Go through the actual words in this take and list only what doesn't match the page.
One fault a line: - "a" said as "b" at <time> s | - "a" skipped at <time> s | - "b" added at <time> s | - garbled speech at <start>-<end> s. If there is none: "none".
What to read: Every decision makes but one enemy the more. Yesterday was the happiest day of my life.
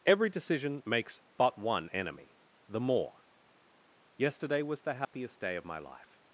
none